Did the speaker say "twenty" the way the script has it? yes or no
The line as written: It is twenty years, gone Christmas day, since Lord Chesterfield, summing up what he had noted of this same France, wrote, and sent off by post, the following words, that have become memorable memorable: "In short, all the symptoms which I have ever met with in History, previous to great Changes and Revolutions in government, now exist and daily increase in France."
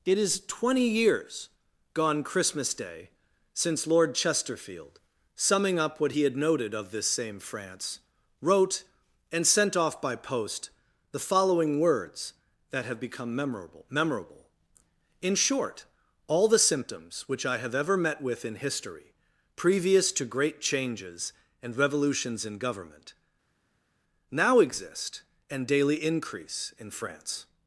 yes